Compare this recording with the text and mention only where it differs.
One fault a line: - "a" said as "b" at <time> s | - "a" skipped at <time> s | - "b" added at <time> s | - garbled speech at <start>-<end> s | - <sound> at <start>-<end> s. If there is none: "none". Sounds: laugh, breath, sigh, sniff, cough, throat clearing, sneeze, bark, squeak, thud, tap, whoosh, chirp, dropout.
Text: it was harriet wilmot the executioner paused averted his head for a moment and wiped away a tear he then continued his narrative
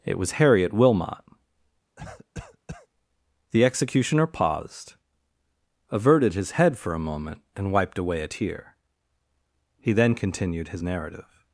- cough at 2.0-2.9 s